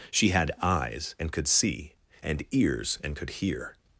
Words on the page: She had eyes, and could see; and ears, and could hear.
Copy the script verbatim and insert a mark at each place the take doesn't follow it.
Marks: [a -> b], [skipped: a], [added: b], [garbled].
She had eyes, and could see; and ears, and could hear.